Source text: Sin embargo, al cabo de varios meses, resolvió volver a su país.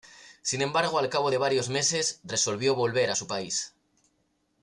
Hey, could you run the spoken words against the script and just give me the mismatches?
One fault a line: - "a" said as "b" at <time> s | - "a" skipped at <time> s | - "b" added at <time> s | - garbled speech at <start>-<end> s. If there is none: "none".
none